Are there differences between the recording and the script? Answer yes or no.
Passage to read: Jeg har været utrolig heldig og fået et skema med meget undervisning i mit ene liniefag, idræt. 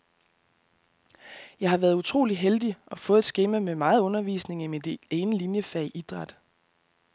no